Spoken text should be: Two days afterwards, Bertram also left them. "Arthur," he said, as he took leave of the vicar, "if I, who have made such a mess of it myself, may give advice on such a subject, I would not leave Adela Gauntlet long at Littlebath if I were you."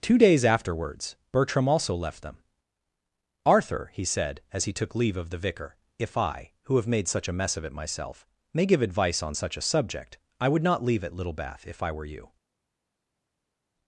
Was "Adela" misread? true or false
true